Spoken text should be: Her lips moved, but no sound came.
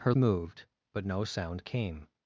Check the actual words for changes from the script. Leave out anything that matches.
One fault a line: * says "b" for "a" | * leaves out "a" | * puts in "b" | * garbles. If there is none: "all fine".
* leaves out "lips"